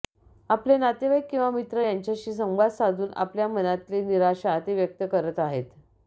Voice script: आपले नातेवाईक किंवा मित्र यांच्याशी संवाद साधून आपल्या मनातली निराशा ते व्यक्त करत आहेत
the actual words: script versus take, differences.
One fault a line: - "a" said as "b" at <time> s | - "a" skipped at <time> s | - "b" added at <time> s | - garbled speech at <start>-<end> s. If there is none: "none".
none